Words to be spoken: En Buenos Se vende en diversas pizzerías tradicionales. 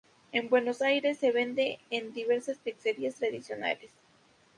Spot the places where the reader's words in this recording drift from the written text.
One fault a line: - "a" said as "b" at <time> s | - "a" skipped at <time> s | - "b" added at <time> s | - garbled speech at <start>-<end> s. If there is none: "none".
- "Aires" added at 0.8 s